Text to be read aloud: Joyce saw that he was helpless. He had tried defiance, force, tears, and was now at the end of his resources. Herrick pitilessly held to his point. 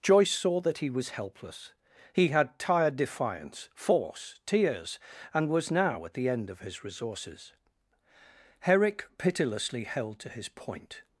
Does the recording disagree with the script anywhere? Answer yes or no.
yes